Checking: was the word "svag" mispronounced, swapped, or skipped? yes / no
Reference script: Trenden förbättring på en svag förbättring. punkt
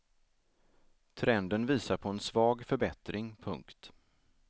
no